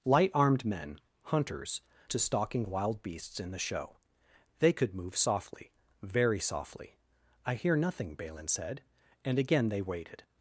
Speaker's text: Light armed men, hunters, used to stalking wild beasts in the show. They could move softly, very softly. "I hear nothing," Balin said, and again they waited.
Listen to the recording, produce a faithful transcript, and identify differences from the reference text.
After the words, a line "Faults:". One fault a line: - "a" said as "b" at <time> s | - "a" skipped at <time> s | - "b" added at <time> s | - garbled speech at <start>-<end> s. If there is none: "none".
Light armed men, hunters, to stalking wild beasts in the show. They could move softly, very softly. "I hear nothing," Balin said, and again they waited.
Faults:
- "used" skipped at 1.8 s